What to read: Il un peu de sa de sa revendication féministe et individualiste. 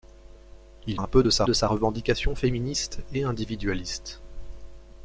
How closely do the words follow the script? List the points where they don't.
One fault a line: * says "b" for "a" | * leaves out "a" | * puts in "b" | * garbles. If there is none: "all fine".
all fine